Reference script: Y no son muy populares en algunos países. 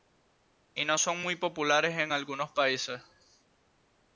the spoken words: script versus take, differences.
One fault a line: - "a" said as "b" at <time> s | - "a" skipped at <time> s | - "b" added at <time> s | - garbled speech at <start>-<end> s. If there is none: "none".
none